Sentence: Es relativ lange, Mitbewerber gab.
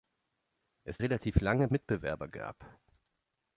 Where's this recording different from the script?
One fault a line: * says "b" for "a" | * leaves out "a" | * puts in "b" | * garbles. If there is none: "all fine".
all fine